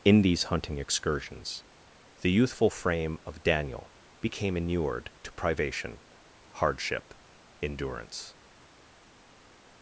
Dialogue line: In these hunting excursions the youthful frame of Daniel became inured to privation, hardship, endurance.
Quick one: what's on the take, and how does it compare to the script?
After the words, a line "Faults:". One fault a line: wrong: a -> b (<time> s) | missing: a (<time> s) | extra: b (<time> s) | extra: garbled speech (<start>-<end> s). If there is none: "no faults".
In these hunting excursions the youthful frame of Daniel became inured to privation, hardship, endurance.
Faults:
no faults